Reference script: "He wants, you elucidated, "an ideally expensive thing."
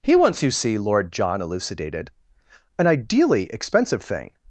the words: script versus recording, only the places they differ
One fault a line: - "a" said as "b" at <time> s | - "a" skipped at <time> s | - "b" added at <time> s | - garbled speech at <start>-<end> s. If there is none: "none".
- "see Lord John" added at 0.5 s